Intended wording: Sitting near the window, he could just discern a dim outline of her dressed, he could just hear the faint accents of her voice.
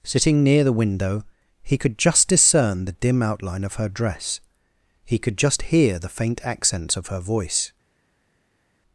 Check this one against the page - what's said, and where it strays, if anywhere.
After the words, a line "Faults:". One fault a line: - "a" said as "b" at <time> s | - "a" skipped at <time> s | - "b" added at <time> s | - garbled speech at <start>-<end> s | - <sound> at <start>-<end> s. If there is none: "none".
Sitting near the window, he could just discern the dim outline of her dress, he could just hear the faint accents of her voice.
Faults:
- "a" said as "the" at 2.9 s
- "dressed" said as "dress" at 3.9 s